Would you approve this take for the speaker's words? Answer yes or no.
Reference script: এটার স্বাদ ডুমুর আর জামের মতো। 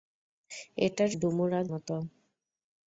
no